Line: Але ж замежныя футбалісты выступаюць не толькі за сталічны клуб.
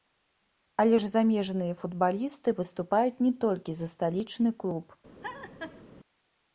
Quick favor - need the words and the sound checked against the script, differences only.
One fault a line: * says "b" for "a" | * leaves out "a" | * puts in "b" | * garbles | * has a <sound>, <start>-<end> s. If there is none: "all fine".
* has a laugh, 5.2-5.8 s